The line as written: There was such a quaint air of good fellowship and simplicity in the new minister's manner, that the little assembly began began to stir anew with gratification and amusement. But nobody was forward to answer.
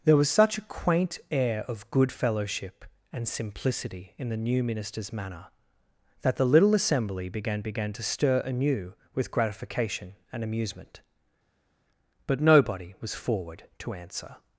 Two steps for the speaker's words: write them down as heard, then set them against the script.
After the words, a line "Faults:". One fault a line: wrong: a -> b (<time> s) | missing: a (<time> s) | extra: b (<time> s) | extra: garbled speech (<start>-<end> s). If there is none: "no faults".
There was such a quaint air of good fellowship and simplicity in the new minister's manner, that the little assembly began began to stir anew with gratification and amusement. But nobody was forward to answer.
Faults:
no faults